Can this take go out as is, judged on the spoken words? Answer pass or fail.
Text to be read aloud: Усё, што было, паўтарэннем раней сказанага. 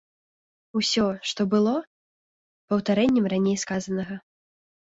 pass